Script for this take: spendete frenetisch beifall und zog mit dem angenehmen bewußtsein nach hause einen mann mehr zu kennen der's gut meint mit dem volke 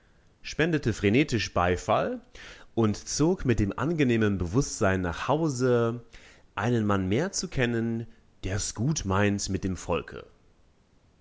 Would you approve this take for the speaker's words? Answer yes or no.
yes